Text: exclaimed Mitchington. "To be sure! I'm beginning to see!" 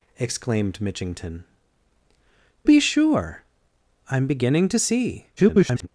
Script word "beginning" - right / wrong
right